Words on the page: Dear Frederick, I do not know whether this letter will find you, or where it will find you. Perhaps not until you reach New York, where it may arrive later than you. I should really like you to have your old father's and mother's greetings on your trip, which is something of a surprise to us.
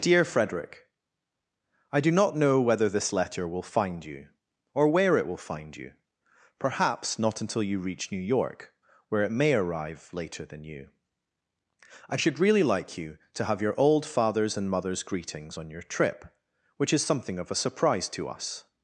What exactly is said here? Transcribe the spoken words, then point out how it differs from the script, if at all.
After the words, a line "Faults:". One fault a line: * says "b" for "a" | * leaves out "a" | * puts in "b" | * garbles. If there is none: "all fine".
Dear Frederick, I do not know whether this letter will find you, or where it will find you. Perhaps not until you reach New York, where it may arrive later than you. I should really like you to have your old father's and mother's greetings on your trip, which is something of a surprise to us.
Faults:
all fine